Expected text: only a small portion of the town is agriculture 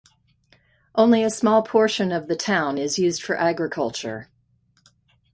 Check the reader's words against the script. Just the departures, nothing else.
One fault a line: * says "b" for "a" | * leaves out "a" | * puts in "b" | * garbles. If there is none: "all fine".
* puts in "used for"